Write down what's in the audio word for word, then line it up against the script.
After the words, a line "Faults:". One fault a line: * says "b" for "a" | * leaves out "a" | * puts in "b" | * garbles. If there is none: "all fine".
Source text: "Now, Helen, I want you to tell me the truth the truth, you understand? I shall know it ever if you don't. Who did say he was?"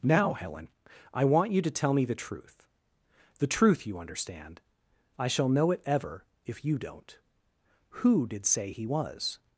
"Now, Helen, I want you to tell me the truth the truth, you understand? I shall know it ever if you don't. Who did say he was?"
Faults:
all fine